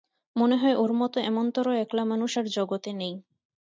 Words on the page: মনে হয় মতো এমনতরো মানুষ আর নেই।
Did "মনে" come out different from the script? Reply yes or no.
no